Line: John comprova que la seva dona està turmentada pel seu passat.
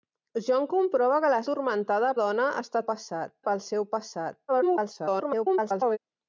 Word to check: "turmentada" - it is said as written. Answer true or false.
false